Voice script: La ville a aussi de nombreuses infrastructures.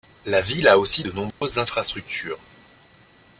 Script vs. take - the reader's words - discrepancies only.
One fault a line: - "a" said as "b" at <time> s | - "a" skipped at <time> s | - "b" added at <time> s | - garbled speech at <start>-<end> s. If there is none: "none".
none